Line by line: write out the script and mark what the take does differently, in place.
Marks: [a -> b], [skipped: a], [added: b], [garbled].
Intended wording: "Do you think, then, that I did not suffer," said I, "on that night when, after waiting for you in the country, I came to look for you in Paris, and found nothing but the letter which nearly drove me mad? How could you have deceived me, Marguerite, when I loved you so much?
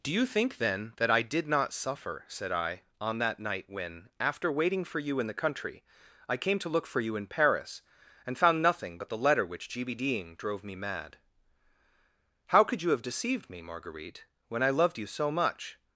"Do you think, then, that I did not suffer," said I, "on that night when, after waiting for you in the country, I came to look for you in Paris, and found nothing but the letter which [nearly -> gbding] drove me mad? How could you have deceived me, Marguerite, when I loved you so much?